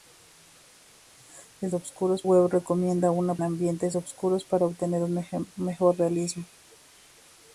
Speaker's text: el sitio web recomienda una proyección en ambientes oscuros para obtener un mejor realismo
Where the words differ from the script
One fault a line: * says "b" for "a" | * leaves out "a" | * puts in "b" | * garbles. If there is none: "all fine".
* says "oscuros" for "sitio"
* leaves out "proyección en"